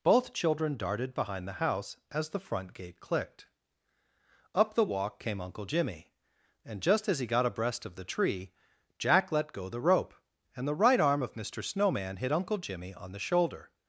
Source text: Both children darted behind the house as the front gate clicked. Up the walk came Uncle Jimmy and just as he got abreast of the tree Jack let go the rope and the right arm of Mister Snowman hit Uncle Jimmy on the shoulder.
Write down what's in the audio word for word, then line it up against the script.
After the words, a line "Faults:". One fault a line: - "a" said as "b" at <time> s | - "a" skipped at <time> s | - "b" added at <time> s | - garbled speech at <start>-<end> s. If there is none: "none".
Both children darted behind the house as the front gate clicked. Up the walk came Uncle Jimmy and just as he got abreast of the tree Jack let go the rope and the right arm of Mister Snowman hit Uncle Jimmy on the shoulder.
Faults:
none